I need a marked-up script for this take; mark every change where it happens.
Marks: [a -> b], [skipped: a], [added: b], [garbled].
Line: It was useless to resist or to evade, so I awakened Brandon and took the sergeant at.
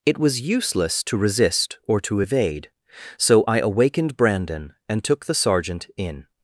It was useless to resist or to evade, so I awakened Brandon and took the sergeant [at. -> in]